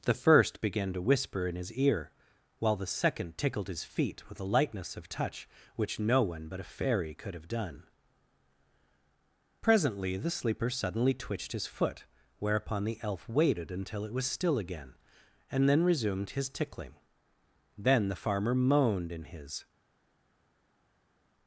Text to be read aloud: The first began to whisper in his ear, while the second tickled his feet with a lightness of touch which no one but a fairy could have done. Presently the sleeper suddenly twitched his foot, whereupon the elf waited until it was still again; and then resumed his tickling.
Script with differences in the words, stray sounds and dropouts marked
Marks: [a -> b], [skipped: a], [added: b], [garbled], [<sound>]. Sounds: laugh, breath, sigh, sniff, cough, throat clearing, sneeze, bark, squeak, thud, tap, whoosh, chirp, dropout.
The first began to whisper in his ear, while the second tickled his feet with a lightness of touch which no one but a fairy could have done. Presently the sleeper suddenly twitched his foot, whereupon the elf waited until it was still again; and then resumed his tickling. [added: Then the farmer moaned in his]